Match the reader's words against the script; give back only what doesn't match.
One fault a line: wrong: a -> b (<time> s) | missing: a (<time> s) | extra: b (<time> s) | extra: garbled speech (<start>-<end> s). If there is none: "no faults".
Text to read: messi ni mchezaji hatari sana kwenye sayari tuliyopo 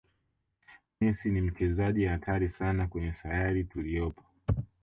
no faults